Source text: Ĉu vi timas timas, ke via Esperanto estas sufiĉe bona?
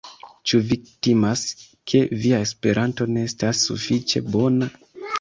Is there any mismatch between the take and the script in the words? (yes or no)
yes